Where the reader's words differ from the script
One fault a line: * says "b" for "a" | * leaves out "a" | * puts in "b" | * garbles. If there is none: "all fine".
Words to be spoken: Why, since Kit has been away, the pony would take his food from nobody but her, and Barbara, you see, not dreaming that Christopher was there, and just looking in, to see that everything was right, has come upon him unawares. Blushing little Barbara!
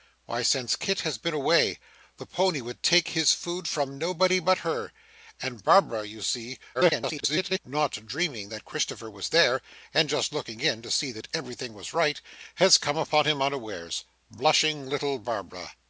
* garbles